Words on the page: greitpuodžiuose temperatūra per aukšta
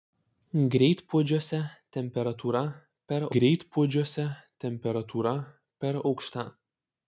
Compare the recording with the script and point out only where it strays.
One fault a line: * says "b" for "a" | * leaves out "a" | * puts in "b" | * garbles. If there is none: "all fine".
* puts in "greitpuodžiuose temperatūra per"